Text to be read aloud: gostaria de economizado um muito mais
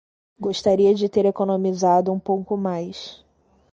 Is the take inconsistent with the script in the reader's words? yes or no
yes